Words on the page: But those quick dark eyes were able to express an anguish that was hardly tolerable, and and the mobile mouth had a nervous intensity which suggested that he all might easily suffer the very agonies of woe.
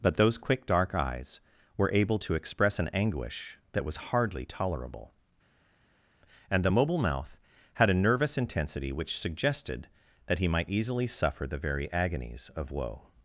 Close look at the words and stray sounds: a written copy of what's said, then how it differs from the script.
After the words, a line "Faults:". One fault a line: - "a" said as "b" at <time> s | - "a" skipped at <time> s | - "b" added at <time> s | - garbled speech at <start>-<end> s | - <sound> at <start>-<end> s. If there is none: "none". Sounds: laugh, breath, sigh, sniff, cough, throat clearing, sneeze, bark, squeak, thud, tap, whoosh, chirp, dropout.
But those quick dark eyes were able to express an anguish that was hardly tolerable, and the mobile mouth had a nervous intensity which suggested that he might easily suffer the very agonies of woe.
Faults:
- "and" skipped at 6.6 s
- "all" skipped at 10.5 s